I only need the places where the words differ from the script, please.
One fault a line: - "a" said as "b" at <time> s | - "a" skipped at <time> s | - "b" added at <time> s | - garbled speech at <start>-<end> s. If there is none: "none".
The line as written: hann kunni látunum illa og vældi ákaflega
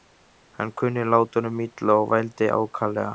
none